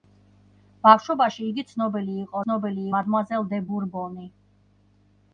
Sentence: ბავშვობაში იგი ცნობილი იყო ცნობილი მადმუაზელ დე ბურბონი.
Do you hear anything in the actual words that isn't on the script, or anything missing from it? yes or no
no